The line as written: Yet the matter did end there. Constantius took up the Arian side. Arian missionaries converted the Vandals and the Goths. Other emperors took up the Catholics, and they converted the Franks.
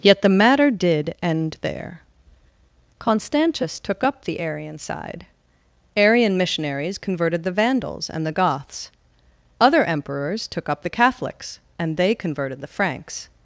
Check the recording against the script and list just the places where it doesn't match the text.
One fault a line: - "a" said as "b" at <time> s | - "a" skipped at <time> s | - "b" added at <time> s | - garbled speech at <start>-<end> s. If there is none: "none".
none